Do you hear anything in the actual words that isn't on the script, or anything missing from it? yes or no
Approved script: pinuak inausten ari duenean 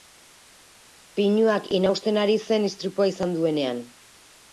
yes